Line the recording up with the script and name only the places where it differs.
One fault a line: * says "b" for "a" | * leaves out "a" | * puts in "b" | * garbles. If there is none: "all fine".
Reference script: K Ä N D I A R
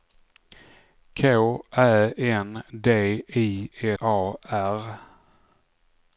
all fine